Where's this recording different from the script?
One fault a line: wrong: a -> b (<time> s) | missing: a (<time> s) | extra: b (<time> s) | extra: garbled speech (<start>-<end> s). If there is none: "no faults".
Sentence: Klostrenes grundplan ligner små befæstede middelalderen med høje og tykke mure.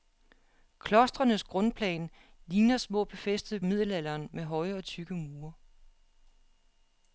no faults